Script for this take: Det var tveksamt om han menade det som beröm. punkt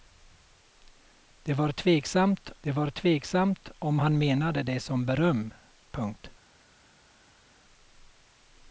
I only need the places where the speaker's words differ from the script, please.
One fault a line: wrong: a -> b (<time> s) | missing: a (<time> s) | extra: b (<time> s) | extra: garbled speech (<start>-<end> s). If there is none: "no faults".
extra: det var tveksamt (2.6 s)